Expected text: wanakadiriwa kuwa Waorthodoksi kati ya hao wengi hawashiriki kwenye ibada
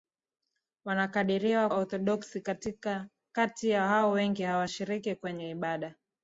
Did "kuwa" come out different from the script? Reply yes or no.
yes